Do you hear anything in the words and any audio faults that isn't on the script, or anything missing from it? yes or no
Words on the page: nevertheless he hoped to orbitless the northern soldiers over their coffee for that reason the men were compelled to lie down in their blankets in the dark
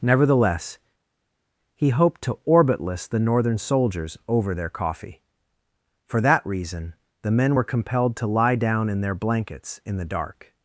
no